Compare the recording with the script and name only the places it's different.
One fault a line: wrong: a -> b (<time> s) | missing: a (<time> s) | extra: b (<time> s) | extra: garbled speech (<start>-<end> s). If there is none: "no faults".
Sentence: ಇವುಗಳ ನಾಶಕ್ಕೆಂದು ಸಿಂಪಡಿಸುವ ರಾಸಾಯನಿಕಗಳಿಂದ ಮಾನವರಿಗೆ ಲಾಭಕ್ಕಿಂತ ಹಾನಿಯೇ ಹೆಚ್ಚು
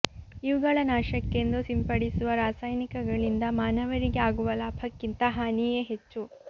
extra: ಆಗುವ (4.3 s)